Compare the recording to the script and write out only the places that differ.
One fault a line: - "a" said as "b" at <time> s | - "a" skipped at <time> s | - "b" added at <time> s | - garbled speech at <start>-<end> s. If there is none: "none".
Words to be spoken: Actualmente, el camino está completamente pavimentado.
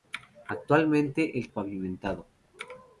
- "camino está completamente" skipped at 1.5 s